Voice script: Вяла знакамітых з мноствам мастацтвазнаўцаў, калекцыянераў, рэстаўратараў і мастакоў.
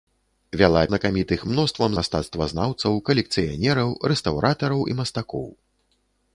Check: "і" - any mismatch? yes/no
no